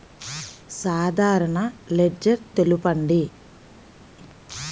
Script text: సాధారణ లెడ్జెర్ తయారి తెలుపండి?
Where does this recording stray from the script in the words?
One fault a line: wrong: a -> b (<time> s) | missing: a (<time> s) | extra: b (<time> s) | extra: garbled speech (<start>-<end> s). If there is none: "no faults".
missing: తయారి (2.4 s)